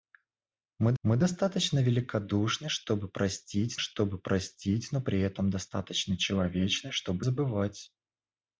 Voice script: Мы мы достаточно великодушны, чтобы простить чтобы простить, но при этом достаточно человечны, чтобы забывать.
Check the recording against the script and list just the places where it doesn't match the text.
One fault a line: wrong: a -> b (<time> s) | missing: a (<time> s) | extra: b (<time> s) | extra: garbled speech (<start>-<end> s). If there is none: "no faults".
no faults